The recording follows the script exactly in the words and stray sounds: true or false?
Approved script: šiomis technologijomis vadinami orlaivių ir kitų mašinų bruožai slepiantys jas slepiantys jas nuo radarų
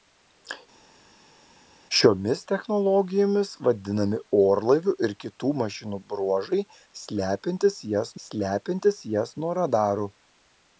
true